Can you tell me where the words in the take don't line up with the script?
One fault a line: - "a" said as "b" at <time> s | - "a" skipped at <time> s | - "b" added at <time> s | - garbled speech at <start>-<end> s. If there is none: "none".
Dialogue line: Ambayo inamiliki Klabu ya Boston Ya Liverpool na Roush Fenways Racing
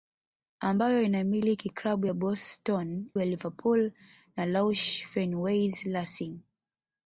none